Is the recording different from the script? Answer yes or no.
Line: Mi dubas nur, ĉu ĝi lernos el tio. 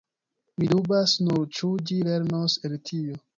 no